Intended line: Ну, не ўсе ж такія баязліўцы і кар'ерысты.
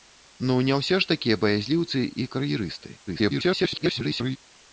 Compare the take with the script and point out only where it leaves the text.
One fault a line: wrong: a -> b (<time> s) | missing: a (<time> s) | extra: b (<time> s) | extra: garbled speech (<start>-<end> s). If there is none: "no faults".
extra: garbled speech (3.1-4.4 s)